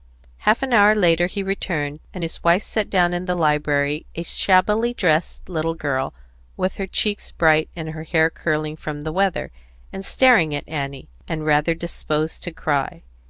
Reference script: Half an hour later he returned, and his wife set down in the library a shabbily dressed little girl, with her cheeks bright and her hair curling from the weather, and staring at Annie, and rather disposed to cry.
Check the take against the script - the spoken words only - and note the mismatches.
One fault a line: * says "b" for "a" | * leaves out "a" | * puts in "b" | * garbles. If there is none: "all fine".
all fine